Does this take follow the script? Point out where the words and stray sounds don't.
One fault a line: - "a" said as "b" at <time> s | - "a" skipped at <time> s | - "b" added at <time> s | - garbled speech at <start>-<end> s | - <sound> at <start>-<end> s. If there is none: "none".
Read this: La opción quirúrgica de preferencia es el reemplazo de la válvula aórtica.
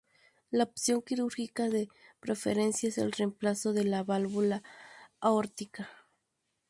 none